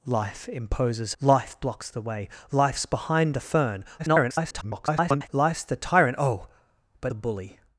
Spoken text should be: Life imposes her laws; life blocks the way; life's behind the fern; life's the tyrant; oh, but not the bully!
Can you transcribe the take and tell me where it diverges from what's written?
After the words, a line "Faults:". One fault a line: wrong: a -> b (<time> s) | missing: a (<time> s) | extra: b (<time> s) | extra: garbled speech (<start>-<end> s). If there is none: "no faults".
Life imposes; life blocks the way; life's behind the fern; [garbled] life's the tyrant; oh, but the bully!
Faults:
missing: her laws (1.1 s)
extra: garbled speech (4.0-5.3 s)
missing: not (7.1 s)